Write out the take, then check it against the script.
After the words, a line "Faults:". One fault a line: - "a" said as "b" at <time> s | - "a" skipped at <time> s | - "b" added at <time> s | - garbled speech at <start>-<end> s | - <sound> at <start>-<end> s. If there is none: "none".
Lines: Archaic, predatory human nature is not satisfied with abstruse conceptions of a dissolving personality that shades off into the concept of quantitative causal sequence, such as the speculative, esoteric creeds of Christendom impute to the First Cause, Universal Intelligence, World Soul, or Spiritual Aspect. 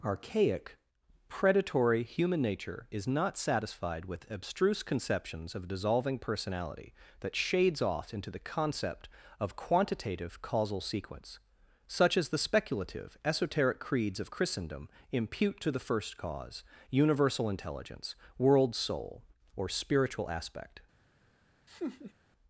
Archaic, predatory human nature is not satisfied with abstruse conceptions of dissolving personality that shades off into the concept of quantitative causal sequence, such as the speculative, esoteric creeds of Christendom impute to the First Cause, Universal Intelligence, World Soul, or Spiritual Aspect.
Faults:
- "a" skipped at 5.7 s
- laugh at 21.7-22.1 s